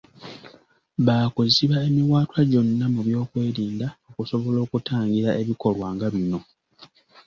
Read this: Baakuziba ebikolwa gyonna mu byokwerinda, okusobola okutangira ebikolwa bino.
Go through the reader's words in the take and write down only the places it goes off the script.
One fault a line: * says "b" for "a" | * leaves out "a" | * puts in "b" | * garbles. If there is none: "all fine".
* says "emiwaatwa" for "ebikolwa"
* puts in "nga"